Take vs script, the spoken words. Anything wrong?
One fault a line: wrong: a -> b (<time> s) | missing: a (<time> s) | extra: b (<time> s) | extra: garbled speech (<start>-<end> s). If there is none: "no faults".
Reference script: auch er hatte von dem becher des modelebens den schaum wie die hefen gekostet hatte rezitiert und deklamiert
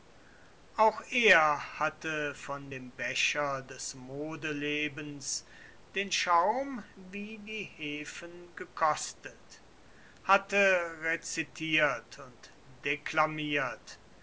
no faults